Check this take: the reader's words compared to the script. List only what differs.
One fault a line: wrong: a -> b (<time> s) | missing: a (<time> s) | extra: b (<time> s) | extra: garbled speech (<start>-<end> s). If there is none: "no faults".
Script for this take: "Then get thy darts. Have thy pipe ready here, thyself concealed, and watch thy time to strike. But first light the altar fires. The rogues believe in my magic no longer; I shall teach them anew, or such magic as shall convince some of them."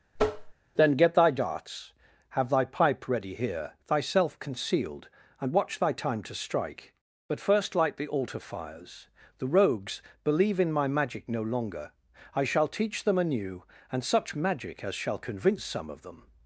wrong: or -> and (13.9 s)